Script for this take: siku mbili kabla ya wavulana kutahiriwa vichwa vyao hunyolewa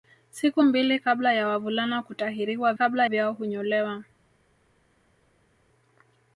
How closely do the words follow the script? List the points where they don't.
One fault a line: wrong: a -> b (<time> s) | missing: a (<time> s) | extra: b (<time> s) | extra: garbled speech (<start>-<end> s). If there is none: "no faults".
wrong: vichwa -> kabla (2.7 s)